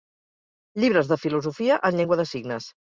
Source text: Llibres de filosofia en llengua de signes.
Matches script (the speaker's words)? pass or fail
pass